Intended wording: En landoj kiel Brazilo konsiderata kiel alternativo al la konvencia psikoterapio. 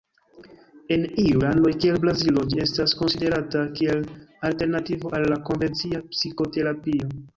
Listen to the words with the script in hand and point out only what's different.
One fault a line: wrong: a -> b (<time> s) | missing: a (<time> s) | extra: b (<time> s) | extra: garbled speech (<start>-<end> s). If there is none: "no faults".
extra: iuj (1.2 s)
extra: ĝi estas (2.5 s)